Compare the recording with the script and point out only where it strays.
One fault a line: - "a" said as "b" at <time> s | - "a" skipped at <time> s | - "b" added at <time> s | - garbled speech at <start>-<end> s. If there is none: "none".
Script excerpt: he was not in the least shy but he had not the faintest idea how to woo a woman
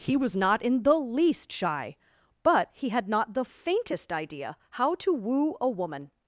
none